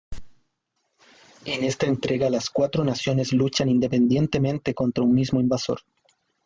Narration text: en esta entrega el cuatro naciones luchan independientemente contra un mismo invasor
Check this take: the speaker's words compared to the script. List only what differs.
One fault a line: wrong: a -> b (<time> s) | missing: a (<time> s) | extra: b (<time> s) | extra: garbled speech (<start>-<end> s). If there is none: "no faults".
wrong: el -> las (2.3 s)